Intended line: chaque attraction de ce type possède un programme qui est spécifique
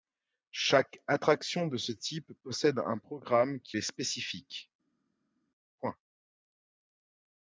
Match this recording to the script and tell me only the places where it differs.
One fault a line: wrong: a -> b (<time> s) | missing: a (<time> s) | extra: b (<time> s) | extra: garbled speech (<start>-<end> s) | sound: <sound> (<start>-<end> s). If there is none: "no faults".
no faults